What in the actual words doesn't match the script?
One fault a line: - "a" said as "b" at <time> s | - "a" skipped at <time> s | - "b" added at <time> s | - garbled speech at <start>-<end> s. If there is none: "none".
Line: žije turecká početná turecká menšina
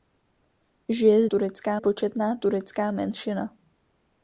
none